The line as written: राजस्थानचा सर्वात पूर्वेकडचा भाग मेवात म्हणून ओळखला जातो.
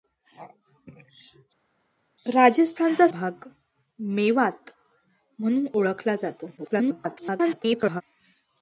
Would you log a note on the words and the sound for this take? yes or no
yes